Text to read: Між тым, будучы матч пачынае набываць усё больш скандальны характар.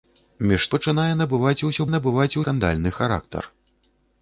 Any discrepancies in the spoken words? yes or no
yes